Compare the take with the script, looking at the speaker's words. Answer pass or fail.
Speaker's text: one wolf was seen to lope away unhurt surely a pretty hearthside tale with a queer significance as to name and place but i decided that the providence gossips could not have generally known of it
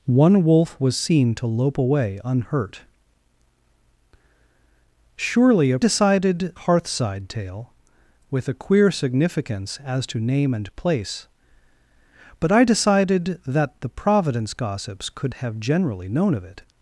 fail